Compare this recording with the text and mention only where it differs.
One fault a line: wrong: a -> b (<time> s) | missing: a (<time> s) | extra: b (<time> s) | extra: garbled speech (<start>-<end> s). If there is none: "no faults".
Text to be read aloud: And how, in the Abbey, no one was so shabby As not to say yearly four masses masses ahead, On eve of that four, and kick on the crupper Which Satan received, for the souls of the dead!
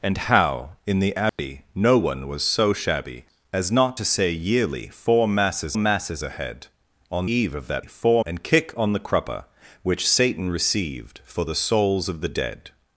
no faults